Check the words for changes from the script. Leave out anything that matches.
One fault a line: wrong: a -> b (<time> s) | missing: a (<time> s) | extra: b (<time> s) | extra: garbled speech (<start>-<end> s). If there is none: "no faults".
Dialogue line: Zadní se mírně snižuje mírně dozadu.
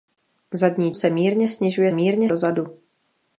no faults